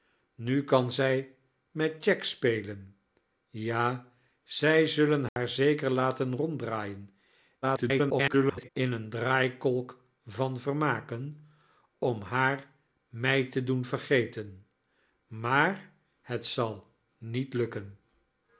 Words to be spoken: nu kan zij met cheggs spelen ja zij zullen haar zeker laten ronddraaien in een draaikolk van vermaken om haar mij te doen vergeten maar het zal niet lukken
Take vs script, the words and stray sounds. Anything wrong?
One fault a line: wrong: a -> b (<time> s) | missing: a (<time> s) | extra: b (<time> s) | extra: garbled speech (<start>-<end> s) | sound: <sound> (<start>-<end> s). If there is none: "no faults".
sound: dropout (5.3-5.4 s)
extra: garbled speech (7.6-8.7 s)